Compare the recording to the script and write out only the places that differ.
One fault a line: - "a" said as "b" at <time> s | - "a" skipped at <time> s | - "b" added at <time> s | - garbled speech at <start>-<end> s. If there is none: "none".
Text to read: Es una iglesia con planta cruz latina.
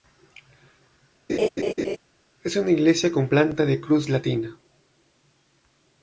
- "de" added at 3.7 s